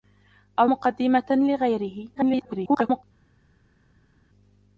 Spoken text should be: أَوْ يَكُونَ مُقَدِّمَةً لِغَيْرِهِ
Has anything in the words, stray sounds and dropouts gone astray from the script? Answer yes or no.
yes